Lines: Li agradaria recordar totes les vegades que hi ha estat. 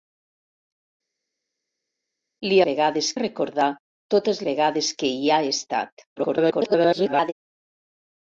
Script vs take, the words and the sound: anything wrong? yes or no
yes